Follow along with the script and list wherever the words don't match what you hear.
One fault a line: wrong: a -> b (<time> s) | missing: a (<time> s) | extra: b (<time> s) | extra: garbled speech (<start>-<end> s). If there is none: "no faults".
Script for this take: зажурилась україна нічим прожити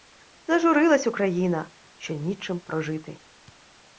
extra: що (2.0 s)